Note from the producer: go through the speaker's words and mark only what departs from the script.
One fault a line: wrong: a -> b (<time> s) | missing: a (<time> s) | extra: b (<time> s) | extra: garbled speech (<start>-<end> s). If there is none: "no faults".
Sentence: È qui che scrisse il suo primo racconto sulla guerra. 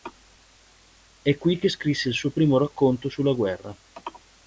no faults